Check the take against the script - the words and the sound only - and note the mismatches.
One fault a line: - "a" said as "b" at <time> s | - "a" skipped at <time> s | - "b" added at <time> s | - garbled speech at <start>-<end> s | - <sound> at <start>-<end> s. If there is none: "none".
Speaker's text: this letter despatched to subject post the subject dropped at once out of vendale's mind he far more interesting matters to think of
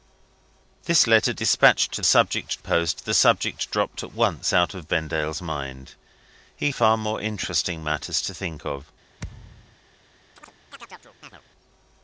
- thud at 9.2-9.8 s
- chirp at 10.4-11.4 s